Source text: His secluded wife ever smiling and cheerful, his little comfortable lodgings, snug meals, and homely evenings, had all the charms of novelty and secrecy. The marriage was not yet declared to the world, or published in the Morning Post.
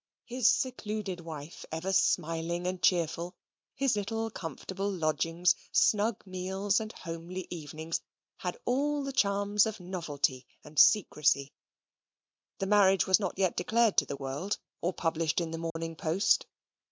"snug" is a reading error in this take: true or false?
false